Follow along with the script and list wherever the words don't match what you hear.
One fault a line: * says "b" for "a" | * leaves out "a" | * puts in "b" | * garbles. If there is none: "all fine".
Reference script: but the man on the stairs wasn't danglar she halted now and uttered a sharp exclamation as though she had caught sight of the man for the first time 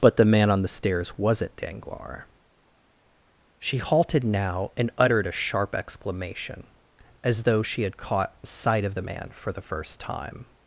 all fine